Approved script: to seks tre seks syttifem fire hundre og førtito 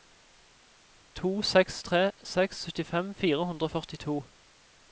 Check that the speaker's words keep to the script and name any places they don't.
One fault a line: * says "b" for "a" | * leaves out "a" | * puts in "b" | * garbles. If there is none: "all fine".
all fine